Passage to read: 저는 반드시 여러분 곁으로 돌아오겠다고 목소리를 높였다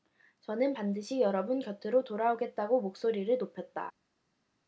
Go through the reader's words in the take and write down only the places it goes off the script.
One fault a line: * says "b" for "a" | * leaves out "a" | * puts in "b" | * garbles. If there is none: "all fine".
all fine